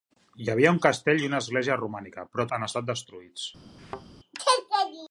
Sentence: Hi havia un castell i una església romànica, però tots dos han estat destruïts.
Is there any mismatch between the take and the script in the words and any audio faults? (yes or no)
yes